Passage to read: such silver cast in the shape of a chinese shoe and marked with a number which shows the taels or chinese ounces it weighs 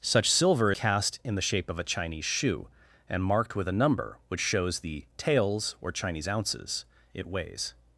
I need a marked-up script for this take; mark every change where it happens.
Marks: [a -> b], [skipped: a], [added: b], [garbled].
such silver cast in the shape of a chinese shoe and marked with a number which shows the taels or chinese ounces it weighs